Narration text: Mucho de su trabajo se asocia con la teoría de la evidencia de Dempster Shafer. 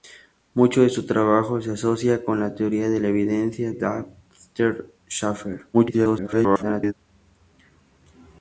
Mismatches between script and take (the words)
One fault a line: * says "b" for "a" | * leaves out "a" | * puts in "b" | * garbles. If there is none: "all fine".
* leaves out "de"
* garbles